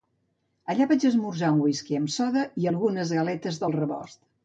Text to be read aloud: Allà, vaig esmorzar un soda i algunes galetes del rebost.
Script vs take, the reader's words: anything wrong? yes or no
yes